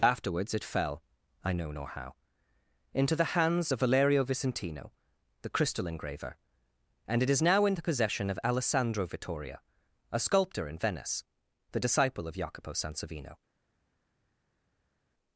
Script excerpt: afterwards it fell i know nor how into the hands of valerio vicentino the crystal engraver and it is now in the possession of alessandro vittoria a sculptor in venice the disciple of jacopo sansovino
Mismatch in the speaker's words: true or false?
false